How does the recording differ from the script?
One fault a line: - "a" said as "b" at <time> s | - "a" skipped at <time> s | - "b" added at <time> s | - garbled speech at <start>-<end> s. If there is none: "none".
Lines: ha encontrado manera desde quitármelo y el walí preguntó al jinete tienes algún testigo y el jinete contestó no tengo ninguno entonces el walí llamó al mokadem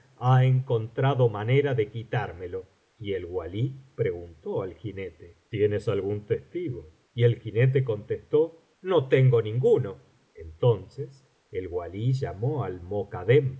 - "desde" said as "de" at 1.7 s